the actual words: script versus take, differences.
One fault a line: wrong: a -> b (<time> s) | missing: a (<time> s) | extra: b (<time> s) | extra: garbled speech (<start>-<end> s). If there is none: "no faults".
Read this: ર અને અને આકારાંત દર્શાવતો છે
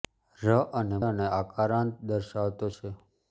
no faults